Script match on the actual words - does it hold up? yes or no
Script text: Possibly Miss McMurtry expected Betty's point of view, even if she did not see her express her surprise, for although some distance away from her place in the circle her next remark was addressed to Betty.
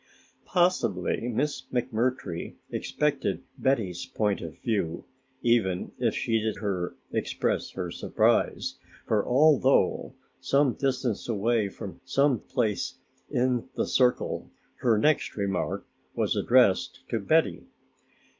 no